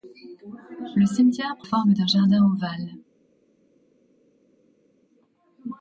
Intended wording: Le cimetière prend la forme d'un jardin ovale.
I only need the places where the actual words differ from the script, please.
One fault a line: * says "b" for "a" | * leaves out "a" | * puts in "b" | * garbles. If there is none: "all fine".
* leaves out "la"